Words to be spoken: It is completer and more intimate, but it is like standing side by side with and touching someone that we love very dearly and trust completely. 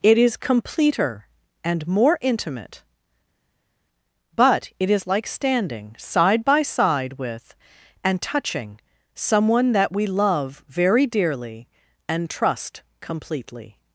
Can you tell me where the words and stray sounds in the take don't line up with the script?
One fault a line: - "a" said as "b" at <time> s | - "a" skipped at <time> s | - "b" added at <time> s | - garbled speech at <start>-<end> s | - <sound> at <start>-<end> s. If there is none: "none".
none